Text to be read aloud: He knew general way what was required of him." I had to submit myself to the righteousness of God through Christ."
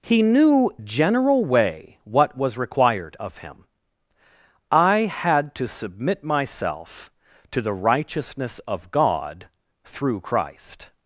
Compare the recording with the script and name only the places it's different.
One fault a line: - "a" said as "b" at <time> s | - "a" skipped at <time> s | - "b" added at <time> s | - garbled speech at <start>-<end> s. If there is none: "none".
none